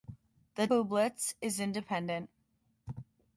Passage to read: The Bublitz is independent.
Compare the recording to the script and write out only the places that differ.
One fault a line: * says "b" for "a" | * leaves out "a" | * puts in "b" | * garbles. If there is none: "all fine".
all fine